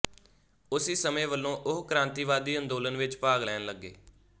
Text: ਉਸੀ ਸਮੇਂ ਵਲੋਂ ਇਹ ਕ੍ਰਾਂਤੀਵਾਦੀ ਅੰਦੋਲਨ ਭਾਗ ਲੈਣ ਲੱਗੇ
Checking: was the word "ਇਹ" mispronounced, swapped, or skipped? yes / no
yes